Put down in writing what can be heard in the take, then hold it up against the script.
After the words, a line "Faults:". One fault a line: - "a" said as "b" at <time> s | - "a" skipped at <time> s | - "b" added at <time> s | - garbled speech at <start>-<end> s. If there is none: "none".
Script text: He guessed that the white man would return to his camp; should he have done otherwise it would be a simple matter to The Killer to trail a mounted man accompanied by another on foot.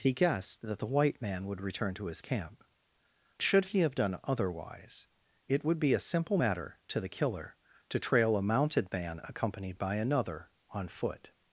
He guessed that the white man would return to his camp; should he have done otherwise it would be a simple matter to The Killer to trail a mounted man accompanied by another on foot.
Faults:
none